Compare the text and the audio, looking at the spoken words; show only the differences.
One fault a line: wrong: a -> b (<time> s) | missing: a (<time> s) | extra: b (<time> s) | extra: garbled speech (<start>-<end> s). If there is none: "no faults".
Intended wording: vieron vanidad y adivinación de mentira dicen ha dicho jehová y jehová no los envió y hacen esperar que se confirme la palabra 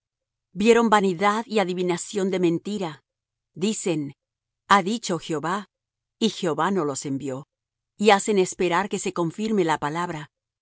no faults